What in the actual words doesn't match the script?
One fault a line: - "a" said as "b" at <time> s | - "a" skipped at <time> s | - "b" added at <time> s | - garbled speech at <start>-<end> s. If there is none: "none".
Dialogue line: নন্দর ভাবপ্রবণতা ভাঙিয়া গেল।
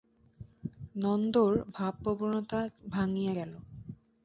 none